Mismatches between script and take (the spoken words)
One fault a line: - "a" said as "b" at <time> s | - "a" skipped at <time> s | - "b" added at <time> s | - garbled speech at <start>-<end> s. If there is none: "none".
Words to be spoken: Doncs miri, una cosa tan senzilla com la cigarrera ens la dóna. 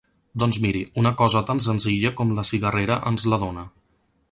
none